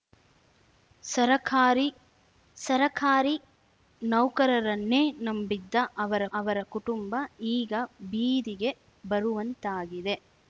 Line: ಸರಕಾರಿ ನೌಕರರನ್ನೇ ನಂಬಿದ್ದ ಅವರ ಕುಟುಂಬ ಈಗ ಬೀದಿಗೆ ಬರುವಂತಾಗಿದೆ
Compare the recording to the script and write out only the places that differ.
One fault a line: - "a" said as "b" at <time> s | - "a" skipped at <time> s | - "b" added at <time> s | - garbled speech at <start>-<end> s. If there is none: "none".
- "ಸರಕಾರಿ" added at 2.6 s
- "ಅವರ" added at 6.3 s